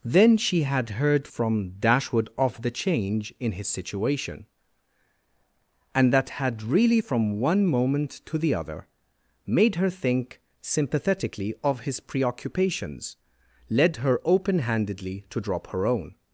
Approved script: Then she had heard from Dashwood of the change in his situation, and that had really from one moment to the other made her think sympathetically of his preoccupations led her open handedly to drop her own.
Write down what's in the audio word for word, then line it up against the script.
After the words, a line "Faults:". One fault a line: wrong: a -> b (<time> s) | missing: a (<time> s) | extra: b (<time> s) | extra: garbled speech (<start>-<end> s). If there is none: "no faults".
Then she had heard from Dashwood of the change in his situation, and that had really from one moment to the other made her think sympathetically of his preoccupations led her open handedly to drop her own.
Faults:
no faults